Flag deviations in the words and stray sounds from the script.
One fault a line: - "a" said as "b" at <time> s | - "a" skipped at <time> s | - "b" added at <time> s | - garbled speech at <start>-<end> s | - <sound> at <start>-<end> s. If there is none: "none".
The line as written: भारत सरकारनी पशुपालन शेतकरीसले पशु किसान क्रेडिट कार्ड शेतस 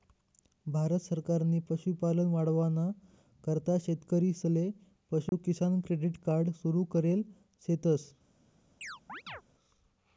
- "वाढावाना करता" added at 2.3 s
- dropout at 5.3-5.3 s
- "सुरु करेल" added at 6.6 s
- chirp at 8.8-9.4 s